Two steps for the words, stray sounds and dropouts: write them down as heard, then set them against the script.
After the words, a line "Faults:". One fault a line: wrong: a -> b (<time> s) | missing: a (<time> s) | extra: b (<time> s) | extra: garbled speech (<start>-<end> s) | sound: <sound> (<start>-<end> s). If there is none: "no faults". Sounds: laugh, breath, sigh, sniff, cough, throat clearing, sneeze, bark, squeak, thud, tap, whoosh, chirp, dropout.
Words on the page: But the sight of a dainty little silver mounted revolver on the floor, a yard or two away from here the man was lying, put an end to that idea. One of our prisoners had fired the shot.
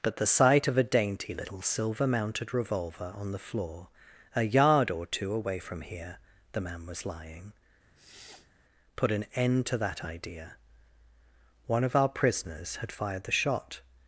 But the sight of a dainty little silver mounted revolver on the floor, a yard or two away from here the man was lying, put an end to that idea. One of our prisoners had fired the shot.
Faults:
sound: sniff (7.9-8.5 s)